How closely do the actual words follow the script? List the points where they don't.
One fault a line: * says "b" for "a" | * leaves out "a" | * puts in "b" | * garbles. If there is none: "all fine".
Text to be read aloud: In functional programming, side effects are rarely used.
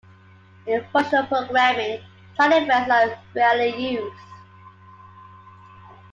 all fine